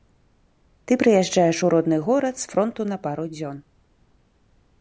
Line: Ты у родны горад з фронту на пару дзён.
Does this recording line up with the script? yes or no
no